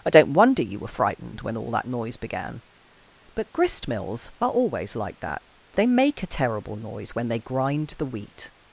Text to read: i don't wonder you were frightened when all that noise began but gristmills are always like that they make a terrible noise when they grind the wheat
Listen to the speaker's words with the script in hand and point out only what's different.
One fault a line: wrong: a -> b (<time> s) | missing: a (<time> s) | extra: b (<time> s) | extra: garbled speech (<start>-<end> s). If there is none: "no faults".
no faults